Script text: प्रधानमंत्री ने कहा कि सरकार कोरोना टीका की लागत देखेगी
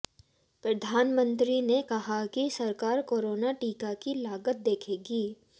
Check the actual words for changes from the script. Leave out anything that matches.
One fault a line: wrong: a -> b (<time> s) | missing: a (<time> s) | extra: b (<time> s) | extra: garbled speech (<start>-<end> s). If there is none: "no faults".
no faults